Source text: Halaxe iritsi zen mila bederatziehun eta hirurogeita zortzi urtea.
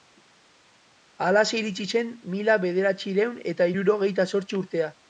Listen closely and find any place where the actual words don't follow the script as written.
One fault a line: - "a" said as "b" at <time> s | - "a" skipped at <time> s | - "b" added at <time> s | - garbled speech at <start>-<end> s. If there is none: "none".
none